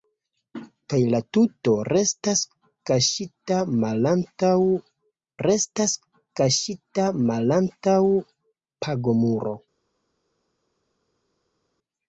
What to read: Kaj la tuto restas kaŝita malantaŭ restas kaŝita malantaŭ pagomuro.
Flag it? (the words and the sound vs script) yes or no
no